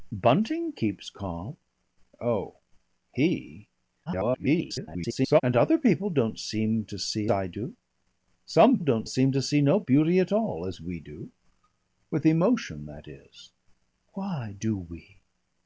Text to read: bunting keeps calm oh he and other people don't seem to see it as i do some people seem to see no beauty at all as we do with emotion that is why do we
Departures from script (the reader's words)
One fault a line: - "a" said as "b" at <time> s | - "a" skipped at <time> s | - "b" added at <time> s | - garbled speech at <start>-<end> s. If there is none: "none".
- garbled speech at 4.1-5.4 s
- "it as" skipped at 7.3 s
- "people" said as "don't" at 8.8 s